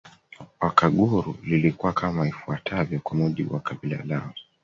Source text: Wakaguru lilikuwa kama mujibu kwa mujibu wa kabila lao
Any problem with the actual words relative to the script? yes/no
yes